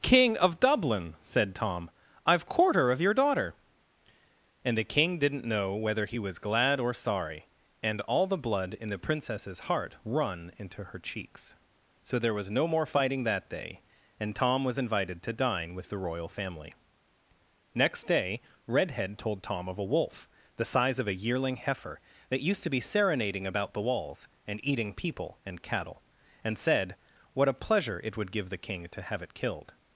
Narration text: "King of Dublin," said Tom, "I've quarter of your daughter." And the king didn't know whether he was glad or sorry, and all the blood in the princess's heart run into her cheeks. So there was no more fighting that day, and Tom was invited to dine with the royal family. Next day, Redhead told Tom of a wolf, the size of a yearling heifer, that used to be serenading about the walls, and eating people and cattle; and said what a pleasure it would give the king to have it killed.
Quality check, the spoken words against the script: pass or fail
pass